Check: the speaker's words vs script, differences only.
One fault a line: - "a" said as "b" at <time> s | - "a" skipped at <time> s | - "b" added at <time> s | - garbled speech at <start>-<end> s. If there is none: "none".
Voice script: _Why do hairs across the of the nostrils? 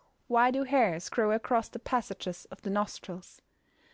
- "grow" added at 1.1 s
- "passages" added at 1.8 s